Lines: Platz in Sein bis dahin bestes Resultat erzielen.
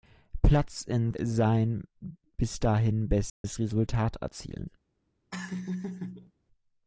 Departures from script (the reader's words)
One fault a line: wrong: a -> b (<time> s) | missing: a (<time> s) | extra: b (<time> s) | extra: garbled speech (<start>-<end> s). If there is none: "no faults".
no faults